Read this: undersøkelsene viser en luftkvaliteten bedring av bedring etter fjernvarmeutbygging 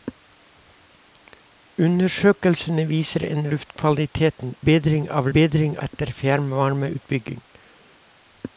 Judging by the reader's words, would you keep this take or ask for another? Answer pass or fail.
pass